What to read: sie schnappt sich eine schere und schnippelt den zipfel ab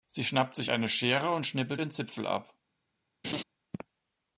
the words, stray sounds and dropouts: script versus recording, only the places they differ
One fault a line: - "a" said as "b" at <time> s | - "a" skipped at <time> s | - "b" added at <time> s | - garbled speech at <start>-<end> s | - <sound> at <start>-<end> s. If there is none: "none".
- laugh at 3.2-3.4 s